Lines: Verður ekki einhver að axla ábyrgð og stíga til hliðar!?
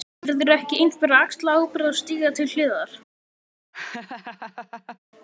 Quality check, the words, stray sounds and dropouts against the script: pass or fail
fail